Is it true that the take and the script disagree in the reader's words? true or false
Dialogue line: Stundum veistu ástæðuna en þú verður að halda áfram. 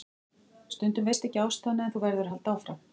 true